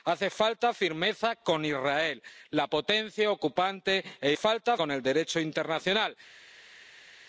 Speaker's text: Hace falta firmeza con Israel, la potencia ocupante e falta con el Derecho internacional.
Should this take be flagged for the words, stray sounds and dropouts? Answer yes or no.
no